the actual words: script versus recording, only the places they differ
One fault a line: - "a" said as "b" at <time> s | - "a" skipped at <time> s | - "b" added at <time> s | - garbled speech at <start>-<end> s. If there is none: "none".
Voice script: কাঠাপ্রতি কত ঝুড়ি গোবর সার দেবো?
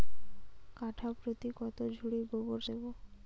- "সার" skipped at 2.6 s